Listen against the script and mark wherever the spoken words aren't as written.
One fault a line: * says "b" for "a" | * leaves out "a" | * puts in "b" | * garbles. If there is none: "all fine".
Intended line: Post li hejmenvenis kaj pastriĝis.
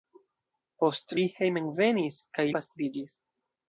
all fine